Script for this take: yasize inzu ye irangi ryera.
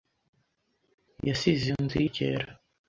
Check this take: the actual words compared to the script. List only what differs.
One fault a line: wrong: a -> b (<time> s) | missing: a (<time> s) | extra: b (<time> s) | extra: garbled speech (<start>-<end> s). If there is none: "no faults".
missing: irangi (2.1 s)